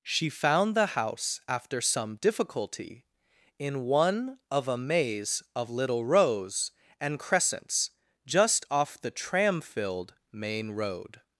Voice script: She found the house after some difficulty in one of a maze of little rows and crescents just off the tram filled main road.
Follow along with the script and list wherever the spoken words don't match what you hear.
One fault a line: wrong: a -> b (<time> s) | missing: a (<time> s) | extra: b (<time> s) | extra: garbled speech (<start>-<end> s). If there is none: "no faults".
no faults